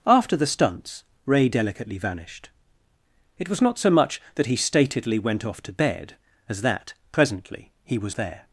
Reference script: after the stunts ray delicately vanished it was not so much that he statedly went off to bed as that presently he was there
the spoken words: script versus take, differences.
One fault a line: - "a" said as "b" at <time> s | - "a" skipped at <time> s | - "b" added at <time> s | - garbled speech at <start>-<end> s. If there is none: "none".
none